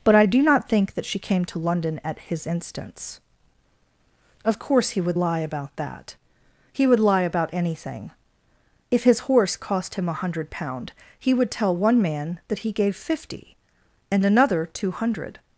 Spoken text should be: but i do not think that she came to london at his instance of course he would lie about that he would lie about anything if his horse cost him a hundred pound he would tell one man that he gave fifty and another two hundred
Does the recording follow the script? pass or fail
pass